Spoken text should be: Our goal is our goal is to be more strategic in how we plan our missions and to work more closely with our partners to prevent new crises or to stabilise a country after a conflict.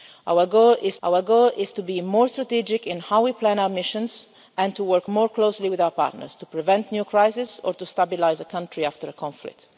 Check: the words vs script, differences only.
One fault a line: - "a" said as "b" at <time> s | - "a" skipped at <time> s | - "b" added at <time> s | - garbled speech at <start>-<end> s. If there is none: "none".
none